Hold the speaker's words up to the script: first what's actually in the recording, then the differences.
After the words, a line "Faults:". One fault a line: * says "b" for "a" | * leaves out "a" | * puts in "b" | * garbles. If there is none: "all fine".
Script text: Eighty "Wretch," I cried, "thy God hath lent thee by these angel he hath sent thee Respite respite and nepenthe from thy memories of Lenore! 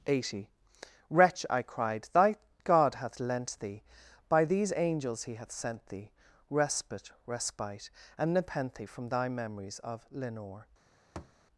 Eighty "Wretch," I cried, "thy God hath lent thee by these angels he hath sent thee Respite respite and nepenthe from thy memories of Lenore!
Faults:
* says "angels" for "angel"